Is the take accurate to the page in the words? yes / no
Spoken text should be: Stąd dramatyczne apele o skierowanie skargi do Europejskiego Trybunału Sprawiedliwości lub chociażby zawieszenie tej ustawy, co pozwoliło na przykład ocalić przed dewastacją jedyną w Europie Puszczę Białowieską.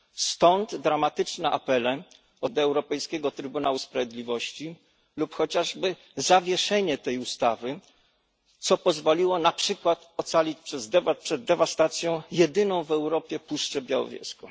no